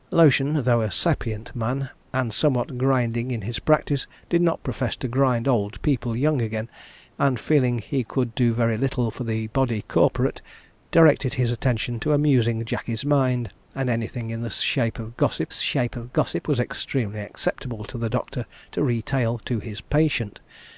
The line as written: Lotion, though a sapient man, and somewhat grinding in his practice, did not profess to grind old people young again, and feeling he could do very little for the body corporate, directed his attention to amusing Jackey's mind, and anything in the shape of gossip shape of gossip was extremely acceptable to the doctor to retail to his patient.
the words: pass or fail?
pass